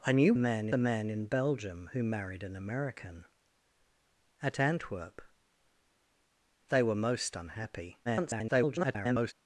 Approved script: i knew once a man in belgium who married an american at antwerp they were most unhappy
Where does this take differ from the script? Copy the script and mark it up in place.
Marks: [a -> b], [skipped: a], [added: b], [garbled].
i knew [once -> man] a man in belgium who married an american at antwerp they were most unhappy [garbled]